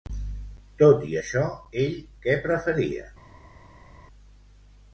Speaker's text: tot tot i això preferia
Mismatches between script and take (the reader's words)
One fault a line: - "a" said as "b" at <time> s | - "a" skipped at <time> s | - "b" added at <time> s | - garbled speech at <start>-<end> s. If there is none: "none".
- "tot" skipped at 1.0 s
- "ell què" added at 1.8 s